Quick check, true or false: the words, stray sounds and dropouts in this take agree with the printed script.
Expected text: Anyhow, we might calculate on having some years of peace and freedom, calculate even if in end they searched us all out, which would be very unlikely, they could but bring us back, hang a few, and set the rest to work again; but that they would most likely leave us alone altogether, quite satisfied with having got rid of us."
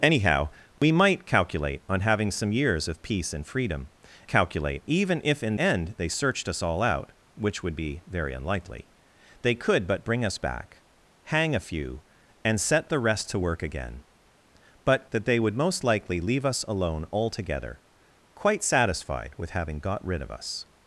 false